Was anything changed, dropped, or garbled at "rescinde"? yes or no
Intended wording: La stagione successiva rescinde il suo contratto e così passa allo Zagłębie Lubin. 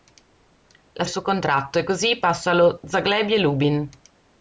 yes